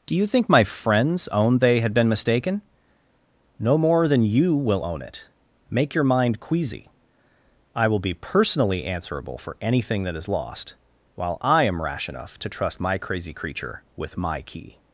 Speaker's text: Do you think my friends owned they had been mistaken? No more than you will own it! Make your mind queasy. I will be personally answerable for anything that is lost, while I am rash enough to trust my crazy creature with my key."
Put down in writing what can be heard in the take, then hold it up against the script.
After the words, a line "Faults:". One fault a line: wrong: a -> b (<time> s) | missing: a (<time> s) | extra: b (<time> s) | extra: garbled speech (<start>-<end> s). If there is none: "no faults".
Do you think my friends owned they had been mistaken? No more than you will own it! Make your mind queasy. I will be personally answerable for anything that is lost, while I am rash enough to trust my crazy creature with my key."
Faults:
no faults